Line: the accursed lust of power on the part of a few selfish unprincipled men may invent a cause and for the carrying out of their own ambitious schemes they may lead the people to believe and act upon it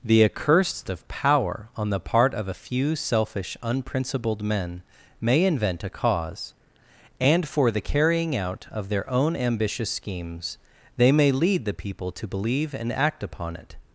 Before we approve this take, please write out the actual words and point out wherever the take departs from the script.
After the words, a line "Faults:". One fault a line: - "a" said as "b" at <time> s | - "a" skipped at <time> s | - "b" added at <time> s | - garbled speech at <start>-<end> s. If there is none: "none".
the accursed of power on the part of a few selfish unprincipled men may invent a cause and for the carrying out of their own ambitious schemes they may lead the people to believe and act upon it
Faults:
- "lust" skipped at 0.9 s